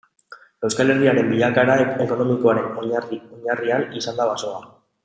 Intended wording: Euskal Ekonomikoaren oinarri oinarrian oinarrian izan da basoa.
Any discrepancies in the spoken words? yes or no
yes